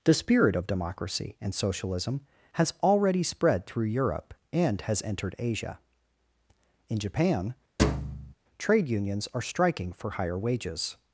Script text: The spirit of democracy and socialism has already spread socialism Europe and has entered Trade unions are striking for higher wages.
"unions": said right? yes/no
yes